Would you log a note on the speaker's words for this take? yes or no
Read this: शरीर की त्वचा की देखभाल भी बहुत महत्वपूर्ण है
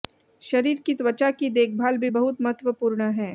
no